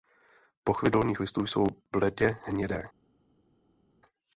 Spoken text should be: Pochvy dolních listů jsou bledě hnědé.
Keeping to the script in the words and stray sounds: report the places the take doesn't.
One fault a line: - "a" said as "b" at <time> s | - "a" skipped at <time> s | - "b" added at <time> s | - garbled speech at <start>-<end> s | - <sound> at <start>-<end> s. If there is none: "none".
none